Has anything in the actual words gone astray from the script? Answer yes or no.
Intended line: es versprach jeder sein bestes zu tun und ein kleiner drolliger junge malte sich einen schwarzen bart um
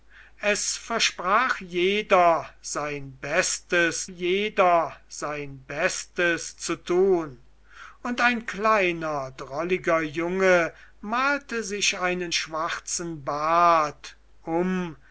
yes